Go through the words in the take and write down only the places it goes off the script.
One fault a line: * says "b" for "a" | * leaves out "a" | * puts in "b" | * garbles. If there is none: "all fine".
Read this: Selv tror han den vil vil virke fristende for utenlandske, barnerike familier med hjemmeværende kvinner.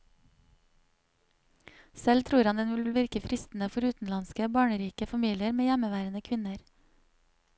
all fine